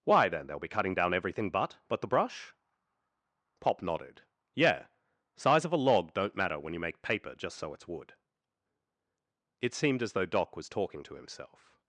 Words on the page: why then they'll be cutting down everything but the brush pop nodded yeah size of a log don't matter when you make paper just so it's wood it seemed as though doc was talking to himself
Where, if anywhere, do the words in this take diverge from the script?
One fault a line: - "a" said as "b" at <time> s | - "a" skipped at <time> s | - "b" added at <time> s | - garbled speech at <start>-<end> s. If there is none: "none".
- "but" added at 1.9 s